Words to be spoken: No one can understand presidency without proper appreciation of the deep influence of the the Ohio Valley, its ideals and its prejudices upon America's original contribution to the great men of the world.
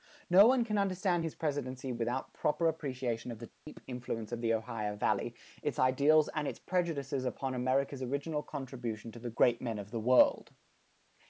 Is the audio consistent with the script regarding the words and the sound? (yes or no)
no